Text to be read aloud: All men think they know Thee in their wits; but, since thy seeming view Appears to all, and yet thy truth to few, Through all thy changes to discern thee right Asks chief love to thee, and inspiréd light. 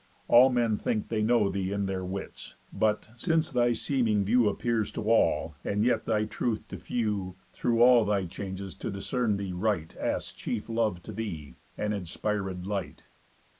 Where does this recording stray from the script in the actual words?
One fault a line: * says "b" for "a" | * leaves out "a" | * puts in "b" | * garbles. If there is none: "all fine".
all fine